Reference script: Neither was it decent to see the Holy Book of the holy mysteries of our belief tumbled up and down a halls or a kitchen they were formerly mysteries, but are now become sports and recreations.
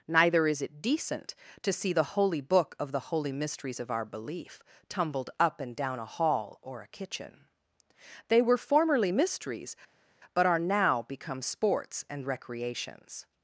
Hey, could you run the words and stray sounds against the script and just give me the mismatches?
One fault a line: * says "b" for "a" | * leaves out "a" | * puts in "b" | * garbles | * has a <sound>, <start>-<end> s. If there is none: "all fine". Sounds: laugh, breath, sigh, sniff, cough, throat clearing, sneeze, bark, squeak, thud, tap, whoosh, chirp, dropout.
* says "is" for "was"
* says "hall" for "halls"